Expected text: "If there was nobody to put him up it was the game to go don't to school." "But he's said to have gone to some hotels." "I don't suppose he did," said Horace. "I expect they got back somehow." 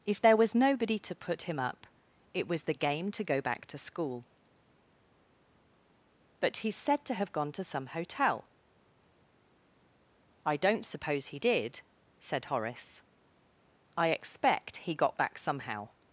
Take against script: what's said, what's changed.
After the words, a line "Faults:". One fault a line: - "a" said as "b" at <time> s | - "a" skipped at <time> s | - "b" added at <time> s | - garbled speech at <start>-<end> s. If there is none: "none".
"If there was nobody to put him up it was the game to go back to school." "But he's said to have gone to some hotel." "I don't suppose he did," said Horace. "I expect he got back somehow."
Faults:
- "don't" said as "back" at 3.4 s
- "hotels" said as "hotel" at 7.9 s
- "they" said as "he" at 14.8 s